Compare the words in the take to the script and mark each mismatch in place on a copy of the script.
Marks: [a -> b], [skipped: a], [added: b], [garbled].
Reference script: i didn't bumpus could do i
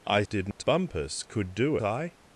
i didn't bumpus could do i